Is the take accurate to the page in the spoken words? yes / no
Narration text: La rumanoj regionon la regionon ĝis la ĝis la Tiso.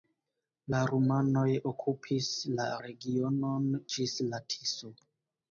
no